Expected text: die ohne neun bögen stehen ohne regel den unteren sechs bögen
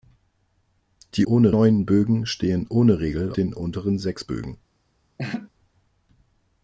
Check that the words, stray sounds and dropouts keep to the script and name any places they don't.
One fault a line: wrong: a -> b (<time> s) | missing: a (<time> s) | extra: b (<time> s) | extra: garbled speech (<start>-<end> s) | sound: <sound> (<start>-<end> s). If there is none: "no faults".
sound: laugh (5.2-5.5 s)